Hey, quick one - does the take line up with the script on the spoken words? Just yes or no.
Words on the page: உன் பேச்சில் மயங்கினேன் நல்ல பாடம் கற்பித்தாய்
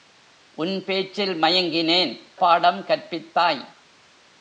no